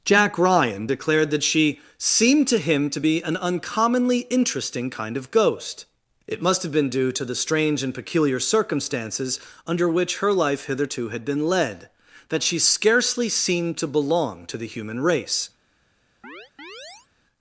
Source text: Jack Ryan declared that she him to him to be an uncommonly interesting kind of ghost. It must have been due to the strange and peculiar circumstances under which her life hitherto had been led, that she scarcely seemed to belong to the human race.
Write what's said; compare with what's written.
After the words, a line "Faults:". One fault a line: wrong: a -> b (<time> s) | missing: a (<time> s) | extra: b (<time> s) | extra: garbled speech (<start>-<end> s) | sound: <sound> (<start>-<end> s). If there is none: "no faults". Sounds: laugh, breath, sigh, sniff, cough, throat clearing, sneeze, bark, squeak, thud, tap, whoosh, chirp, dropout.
Jack Ryan declared that she seemed to him to be an uncommonly interesting kind of ghost. It must have been due to the strange and peculiar circumstances under which her life hitherto had been led, that she scarcely seemed to belong to the human race.
Faults:
wrong: him -> seemed (2.0 s)
sound: chirp (16.2-17.1 s)